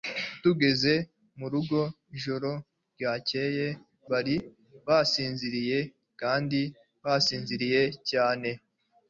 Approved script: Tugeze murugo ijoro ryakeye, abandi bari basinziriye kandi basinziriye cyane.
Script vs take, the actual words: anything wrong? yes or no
yes